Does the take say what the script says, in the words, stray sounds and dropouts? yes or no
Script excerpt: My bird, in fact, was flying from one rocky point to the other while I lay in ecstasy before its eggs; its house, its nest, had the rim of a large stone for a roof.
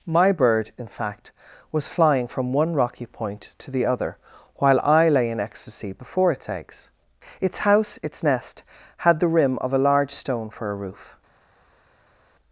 yes